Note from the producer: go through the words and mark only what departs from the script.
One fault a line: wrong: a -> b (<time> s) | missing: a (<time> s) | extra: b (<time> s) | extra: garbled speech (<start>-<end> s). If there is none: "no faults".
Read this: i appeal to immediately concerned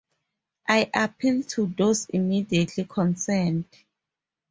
extra: those (1.7 s)